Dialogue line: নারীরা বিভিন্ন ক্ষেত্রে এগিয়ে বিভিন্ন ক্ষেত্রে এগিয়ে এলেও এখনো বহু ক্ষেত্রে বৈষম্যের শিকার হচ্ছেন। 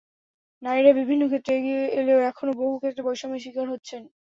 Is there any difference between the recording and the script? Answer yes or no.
yes